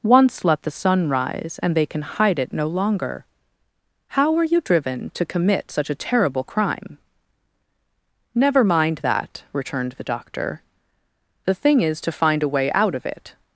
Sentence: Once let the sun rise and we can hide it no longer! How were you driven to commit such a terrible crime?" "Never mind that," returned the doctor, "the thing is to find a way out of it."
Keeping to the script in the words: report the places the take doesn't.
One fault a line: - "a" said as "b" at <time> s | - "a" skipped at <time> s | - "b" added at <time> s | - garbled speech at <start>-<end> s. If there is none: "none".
- "we" said as "they" at 1.8 s